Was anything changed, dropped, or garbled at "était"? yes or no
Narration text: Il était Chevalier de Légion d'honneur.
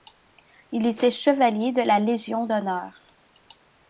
no